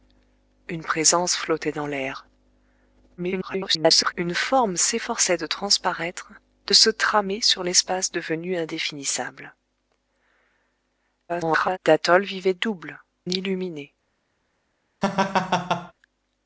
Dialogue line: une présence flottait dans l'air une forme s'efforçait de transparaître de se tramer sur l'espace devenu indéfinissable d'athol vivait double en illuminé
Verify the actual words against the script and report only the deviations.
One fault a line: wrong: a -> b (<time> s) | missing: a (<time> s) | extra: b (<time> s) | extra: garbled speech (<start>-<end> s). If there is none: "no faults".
extra: garbled speech (3.2-4.1 s)
extra: garbled speech (11.3-11.8 s)
missing: en (13.0 s)